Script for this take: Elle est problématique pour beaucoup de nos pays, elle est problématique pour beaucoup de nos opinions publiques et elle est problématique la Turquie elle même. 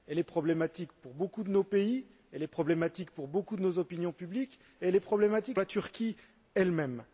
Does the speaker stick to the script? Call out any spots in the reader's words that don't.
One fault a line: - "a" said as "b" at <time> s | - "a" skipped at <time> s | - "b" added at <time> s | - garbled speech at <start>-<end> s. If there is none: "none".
none